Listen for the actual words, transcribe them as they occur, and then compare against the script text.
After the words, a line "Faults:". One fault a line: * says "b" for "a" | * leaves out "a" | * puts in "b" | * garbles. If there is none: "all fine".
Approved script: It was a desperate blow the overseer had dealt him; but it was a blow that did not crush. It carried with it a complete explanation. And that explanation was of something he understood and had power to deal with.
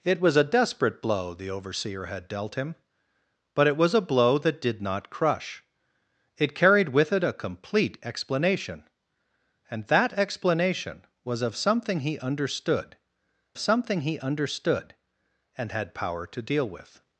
It was a desperate blow the overseer had dealt him; but it was a blow that did not crush. It carried with it a complete explanation. And that explanation was of something he understood something he understood and had power to deal with.
Faults:
* puts in "something he understood"